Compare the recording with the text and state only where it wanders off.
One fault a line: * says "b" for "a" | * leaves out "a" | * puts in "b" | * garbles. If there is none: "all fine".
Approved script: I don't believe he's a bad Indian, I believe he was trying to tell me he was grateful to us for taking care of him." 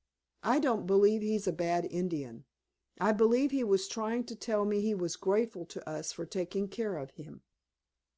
all fine